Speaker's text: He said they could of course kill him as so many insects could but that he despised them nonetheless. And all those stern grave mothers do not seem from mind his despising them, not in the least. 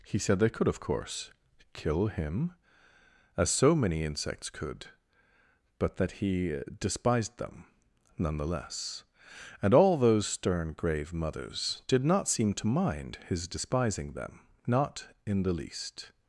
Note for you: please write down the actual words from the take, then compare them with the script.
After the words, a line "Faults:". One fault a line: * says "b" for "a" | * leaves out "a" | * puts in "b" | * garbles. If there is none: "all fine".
He said they could of course kill him as so many insects could but that he despised them nonetheless. And all those stern grave mothers did not seem to mind his despising them, not in the least.
Faults:
* says "did" for "do"
* says "to" for "from"